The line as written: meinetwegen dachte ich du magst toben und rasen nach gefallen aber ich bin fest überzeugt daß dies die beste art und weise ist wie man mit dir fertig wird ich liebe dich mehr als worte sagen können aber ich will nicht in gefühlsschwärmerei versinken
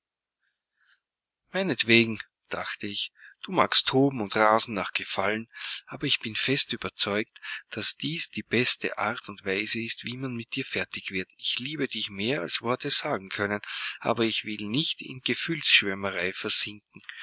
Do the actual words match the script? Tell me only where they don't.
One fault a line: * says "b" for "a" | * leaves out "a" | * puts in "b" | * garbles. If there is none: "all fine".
all fine